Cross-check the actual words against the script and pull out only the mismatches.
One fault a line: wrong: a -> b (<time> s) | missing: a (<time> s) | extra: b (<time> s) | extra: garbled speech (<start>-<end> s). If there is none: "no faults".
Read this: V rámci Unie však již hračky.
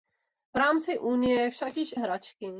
no faults